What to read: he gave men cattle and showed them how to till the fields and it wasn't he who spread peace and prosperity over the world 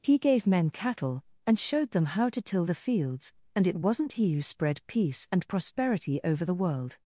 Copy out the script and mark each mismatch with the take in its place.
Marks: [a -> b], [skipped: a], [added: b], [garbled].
he gave men cattle and showed them how to till the fields and it wasn't he who spread peace and prosperity over the world